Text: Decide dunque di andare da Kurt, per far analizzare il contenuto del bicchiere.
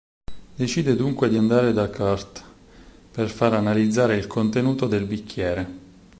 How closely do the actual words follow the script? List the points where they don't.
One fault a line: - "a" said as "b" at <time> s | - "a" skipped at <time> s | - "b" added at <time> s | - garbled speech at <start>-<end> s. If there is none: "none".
none